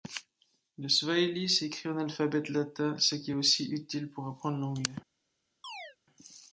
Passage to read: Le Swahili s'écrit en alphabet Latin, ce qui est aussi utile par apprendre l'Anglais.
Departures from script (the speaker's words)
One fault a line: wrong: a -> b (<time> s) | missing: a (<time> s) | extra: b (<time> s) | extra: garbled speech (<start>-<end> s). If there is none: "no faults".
wrong: par -> pour (4.1 s)